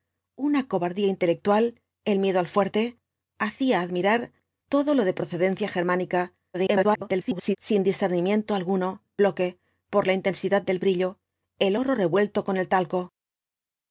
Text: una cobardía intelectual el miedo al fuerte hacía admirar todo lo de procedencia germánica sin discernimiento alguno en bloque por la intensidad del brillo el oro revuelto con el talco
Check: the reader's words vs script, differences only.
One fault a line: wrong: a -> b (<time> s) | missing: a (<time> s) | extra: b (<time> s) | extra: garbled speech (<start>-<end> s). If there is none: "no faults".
extra: garbled speech (6.5-7.6 s)
missing: en (9.0 s)